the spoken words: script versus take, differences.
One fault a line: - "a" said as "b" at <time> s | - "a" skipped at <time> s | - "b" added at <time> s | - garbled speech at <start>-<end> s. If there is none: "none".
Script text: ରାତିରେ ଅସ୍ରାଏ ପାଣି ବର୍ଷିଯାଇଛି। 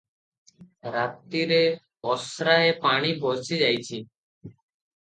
none